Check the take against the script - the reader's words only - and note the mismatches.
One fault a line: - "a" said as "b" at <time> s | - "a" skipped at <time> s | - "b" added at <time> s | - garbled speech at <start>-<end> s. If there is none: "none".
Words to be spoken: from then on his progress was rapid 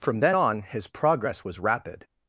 none